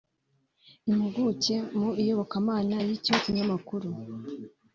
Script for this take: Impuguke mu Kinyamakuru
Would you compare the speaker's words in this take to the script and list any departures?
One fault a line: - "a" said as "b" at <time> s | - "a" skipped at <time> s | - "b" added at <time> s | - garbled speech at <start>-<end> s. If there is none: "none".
- "Iyobokamana y'icyo" added at 2.0 s